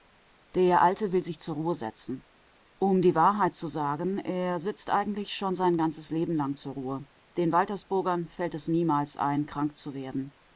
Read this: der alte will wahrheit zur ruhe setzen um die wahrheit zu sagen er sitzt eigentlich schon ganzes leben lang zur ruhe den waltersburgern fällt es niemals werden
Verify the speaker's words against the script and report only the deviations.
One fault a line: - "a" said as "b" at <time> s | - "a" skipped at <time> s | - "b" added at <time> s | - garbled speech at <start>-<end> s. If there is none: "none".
- "wahrheit" said as "sich" at 1.2 s
- "sein" added at 5.6 s
- "ein krank zu" added at 9.2 s